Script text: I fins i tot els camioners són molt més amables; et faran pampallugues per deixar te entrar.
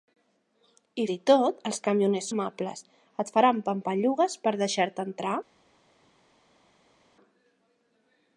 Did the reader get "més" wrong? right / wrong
wrong